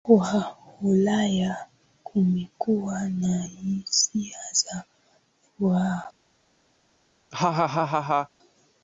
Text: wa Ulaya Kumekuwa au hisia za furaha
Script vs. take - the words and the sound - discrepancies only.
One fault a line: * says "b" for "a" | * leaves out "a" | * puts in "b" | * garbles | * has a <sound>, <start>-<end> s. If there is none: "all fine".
* says "na" for "au"
* has a laugh, 7.3-8.3 s